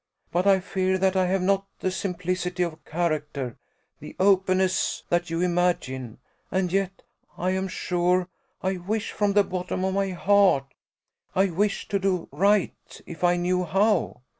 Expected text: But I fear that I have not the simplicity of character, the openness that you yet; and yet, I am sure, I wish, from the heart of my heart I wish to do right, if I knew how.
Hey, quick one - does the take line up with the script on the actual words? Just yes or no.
no